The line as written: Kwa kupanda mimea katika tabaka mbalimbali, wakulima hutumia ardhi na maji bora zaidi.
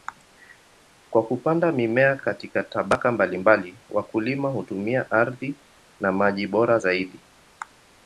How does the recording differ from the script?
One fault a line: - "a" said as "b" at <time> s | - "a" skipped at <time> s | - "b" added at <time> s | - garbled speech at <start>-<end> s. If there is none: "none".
none